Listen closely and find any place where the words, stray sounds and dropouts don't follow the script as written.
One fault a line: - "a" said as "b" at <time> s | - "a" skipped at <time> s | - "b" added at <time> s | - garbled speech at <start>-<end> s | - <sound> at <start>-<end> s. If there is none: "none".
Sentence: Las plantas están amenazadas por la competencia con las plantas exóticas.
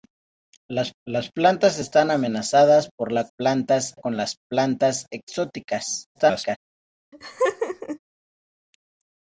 - "las" added at 1.0 s
- "competencia" said as "plantas" at 3.4 s
- garbled speech at 6.1-6.6 s
- laugh at 7.1-8.0 s